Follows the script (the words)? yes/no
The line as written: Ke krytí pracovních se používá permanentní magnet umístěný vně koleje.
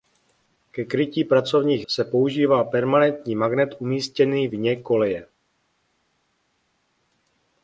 yes